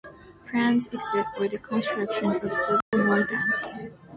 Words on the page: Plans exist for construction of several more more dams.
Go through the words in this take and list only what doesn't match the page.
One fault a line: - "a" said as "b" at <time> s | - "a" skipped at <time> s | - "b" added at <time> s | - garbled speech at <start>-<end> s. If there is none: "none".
- "the" added at 1.5 s
- "more" skipped at 3.2 s